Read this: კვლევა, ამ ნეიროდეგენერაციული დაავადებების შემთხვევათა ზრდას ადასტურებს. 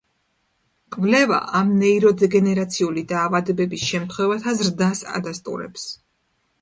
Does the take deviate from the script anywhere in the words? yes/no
no